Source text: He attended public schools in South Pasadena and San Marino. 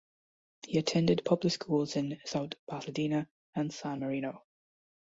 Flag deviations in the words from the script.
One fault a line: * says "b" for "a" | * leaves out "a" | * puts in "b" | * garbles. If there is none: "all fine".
all fine